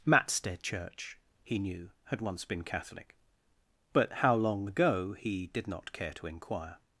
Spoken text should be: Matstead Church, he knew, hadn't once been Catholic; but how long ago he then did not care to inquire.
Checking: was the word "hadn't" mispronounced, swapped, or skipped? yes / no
yes